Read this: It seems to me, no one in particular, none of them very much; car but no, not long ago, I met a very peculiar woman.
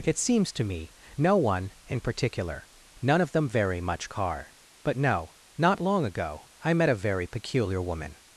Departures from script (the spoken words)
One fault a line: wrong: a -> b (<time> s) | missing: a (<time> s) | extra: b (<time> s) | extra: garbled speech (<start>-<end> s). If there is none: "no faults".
no faults